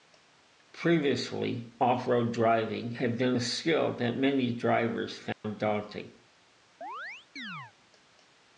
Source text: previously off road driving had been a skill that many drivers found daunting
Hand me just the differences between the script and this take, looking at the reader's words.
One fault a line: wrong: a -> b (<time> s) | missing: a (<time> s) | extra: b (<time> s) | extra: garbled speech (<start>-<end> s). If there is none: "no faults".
no faults